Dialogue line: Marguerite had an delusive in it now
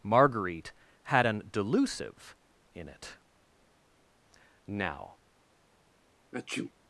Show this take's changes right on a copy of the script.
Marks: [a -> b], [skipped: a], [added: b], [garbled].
Marguerite had an delusive in it now